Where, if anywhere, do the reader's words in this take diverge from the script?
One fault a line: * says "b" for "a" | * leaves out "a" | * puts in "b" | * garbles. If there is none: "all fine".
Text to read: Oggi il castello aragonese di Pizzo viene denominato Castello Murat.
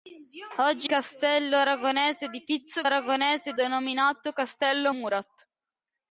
* leaves out "il"
* says "aragonese" for "viene"